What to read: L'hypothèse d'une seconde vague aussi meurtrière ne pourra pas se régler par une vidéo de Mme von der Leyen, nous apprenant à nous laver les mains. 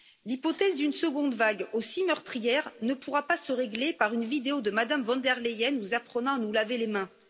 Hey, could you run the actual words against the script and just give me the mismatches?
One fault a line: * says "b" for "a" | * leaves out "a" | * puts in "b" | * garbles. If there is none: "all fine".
all fine